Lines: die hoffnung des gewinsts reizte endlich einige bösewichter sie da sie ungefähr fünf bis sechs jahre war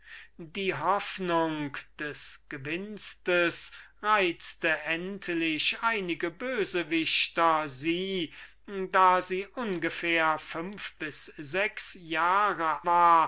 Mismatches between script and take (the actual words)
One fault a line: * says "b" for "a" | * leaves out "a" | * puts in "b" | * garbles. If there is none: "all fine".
all fine